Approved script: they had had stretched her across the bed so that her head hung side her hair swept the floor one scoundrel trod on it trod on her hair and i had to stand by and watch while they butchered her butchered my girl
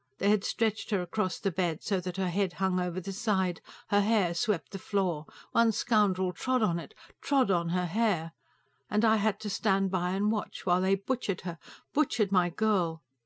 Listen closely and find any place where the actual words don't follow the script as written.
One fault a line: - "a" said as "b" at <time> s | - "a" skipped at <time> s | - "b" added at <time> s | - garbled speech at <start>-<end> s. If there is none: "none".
- "had" skipped at 0.4 s
- "over the" added at 2.8 s